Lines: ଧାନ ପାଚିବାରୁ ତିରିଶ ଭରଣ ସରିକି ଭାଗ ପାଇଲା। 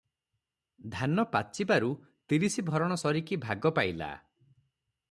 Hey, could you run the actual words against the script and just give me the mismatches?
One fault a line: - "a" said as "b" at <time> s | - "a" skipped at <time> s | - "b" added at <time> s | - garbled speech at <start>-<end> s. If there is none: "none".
none